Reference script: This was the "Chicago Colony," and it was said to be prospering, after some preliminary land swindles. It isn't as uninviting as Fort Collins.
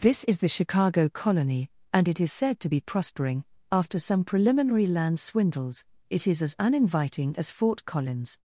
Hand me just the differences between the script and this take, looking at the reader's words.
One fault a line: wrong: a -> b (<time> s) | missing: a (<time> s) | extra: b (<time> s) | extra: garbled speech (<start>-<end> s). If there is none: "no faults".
wrong: was -> is (0.2 s)
wrong: was -> is (2.2 s)
wrong: isn't -> is (6.3 s)